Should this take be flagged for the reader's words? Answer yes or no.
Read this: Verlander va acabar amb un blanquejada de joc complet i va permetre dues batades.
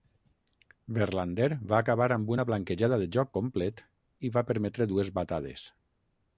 yes